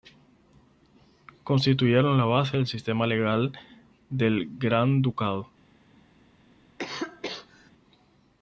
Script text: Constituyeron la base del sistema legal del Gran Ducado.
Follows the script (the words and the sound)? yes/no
no